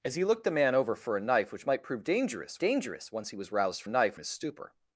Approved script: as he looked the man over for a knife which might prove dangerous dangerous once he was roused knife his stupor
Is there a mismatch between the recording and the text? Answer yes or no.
no